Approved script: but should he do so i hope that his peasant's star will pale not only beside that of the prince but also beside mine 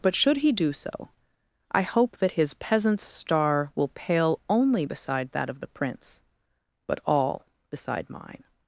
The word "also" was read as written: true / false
false